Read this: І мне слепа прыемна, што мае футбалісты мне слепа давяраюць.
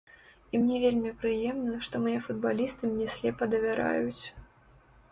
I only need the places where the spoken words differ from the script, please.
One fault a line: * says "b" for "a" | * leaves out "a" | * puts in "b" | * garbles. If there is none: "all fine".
* says "вельмі" for "слепа"